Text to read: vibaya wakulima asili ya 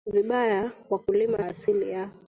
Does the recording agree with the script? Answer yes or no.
yes